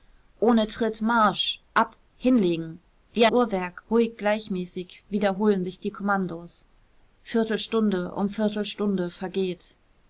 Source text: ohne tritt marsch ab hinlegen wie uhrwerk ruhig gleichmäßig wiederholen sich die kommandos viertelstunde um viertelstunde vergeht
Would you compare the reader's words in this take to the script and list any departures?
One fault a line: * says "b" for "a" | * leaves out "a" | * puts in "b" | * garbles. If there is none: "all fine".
all fine